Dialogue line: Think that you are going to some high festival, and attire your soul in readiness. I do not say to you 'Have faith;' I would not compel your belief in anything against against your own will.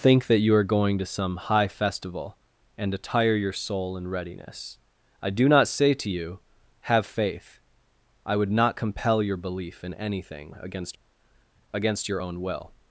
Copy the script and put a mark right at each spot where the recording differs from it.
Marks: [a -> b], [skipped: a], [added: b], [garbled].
Think that you are going to some high festival, and attire your soul in readiness. I do not say to you 'Have faith;' I would not compel your belief in anything against against your own will.